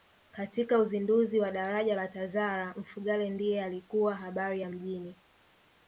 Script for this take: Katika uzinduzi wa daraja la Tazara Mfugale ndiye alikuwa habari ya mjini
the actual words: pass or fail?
pass